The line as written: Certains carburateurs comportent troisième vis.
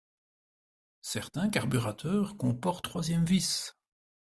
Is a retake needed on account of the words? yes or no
no